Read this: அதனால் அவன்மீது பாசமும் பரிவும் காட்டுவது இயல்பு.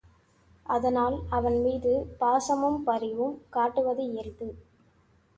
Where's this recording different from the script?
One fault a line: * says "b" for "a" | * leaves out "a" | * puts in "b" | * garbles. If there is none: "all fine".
all fine